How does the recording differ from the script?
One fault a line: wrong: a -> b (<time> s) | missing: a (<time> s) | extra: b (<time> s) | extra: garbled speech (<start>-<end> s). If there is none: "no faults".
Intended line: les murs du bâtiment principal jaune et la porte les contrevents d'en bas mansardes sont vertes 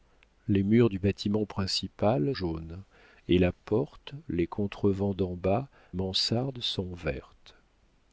no faults